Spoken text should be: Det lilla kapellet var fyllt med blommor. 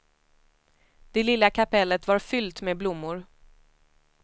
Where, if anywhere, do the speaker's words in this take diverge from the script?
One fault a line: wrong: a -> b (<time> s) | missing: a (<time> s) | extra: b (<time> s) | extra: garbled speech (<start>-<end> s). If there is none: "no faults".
no faults